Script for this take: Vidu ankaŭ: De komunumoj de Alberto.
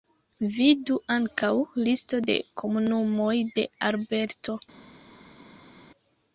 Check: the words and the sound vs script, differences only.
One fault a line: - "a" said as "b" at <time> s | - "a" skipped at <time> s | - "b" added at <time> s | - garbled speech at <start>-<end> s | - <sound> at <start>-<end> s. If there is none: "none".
- "Listo" added at 1.9 s